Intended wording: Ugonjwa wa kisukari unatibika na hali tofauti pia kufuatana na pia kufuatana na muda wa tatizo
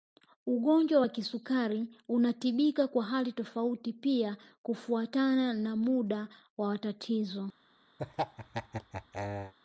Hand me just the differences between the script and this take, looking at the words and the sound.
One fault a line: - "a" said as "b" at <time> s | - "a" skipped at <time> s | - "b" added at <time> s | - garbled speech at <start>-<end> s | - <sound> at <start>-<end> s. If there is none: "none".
- "na" said as "kwa" at 2.9 s
- "pia kufuatana na" skipped at 5.8 s
- laugh at 8.0-9.5 s